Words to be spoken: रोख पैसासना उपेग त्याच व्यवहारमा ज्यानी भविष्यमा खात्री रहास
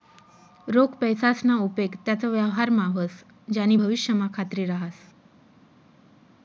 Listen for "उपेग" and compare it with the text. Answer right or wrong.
right